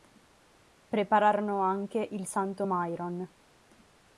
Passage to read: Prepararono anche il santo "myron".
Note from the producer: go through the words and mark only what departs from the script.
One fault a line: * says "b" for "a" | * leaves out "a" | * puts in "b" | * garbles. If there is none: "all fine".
all fine